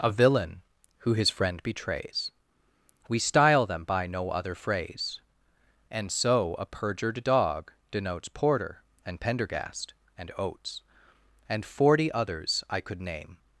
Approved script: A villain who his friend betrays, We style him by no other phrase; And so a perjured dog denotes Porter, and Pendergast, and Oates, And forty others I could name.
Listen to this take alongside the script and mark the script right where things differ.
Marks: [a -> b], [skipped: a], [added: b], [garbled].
A villain who his friend betrays, We style [him -> them] by no other phrase; And so a perjured dog denotes Porter, and Pendergast, and Oates, And forty others I could name.